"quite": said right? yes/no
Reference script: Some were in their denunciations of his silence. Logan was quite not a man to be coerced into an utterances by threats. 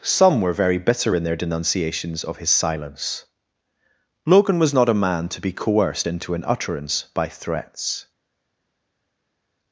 no